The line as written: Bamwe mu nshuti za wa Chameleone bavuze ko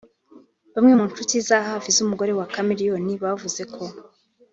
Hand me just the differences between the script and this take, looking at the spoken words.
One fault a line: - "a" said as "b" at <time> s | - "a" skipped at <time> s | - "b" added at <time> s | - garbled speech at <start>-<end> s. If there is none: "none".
- "hafi z'umugore" added at 1.7 s